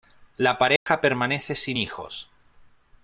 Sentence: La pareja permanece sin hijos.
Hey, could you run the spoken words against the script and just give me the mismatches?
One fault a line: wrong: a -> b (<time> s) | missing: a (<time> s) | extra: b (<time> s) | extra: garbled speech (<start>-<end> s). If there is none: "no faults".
no faults